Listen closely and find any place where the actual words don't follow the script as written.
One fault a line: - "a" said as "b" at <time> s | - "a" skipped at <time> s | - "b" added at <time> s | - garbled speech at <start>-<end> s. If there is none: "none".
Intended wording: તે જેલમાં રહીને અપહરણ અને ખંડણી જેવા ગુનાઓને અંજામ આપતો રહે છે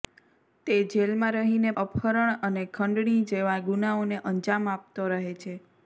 none